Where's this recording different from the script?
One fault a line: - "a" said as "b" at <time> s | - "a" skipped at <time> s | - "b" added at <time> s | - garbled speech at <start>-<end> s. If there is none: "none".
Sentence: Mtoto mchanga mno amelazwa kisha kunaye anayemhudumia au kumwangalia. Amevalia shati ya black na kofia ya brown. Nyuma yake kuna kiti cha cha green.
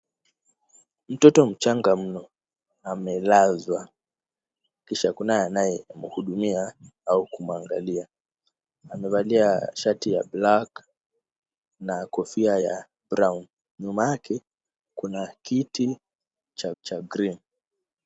none